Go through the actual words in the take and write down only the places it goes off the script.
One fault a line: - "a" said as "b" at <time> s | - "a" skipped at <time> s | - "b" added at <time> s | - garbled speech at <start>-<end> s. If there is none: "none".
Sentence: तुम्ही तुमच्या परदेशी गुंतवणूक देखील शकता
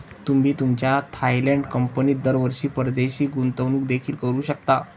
- "थायलंड कंपनीत दरवर्षी" added at 1.1 s
- "करू" added at 4.2 s